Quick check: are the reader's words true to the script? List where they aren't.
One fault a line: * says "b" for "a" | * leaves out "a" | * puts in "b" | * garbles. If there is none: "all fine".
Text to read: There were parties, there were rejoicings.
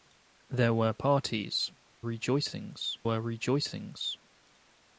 * says "rejoicings" for "there"